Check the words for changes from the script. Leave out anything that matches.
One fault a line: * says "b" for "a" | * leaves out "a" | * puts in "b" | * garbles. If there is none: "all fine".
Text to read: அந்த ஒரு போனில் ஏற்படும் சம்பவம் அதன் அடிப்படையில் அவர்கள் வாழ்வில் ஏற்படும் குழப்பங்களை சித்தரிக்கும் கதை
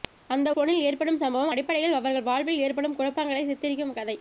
* leaves out "ஒரு"
* leaves out "அதன்"